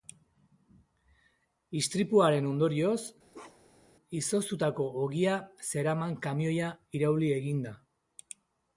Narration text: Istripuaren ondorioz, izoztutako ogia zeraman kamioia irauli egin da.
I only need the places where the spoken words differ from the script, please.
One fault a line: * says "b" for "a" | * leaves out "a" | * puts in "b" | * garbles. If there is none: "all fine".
all fine